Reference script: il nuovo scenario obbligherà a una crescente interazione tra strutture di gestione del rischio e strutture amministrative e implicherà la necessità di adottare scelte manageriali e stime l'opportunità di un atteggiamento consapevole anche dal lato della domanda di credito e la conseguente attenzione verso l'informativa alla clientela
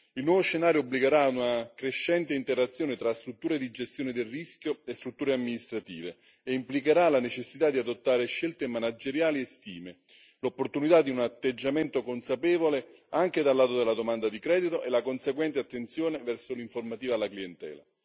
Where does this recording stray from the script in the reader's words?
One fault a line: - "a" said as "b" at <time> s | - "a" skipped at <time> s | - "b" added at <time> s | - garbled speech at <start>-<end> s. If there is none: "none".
none